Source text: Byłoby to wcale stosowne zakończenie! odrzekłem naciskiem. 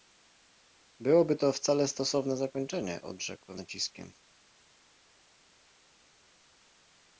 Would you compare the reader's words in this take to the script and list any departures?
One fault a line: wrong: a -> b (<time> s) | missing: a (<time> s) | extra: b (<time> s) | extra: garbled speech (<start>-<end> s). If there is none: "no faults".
no faults